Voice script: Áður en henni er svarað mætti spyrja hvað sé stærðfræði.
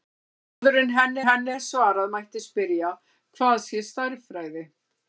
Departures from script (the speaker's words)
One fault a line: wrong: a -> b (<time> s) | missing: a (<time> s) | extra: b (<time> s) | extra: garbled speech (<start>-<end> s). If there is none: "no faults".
extra: henni (1.2 s)